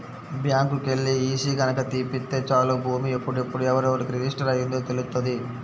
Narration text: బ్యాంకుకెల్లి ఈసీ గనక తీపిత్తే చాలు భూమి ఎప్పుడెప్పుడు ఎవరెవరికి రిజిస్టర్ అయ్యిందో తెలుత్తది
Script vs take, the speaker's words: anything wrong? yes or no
no